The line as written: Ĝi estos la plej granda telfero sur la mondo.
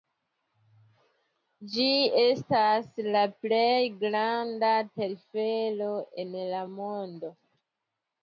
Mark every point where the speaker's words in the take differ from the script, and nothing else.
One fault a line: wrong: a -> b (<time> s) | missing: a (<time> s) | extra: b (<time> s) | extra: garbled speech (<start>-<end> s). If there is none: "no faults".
wrong: estos -> estas (2.2 s)
wrong: sur -> en (6.3 s)